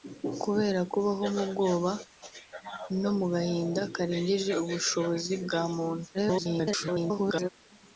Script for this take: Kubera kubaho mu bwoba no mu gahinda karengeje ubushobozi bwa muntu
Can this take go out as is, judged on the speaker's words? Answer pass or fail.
fail